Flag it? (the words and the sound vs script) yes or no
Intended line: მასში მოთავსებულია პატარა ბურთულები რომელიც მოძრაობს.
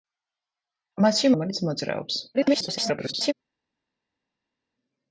yes